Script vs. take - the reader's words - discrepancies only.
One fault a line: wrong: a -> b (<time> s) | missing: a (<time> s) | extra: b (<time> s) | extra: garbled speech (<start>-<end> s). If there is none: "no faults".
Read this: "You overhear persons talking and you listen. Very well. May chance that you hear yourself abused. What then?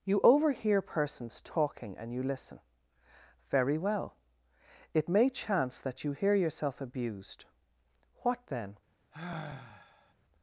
extra: It (4.9 s)